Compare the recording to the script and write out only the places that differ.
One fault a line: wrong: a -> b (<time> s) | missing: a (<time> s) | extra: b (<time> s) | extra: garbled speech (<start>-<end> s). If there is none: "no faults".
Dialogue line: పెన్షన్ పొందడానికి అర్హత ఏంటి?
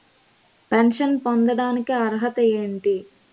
no faults